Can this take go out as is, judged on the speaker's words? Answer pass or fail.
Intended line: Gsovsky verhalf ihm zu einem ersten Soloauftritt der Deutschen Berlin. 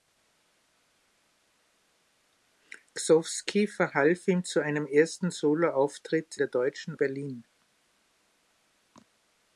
pass